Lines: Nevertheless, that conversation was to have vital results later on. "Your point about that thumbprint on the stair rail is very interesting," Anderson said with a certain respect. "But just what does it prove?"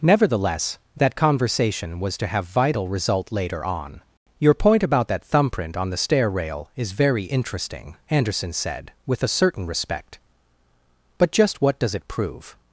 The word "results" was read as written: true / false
false